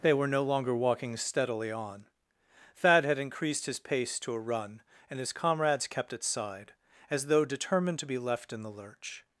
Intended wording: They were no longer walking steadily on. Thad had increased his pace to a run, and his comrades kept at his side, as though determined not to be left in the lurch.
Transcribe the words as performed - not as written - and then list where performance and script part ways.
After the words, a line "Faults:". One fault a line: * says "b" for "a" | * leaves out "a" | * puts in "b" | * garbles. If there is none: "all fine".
They were no longer walking steadily on. Thad had increased his pace to a run, and his comrades kept at side, as though determined to be left in the lurch.
Faults:
* leaves out "his"
* leaves out "not"